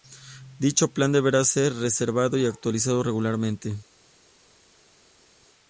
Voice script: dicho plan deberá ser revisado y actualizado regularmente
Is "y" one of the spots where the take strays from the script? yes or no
no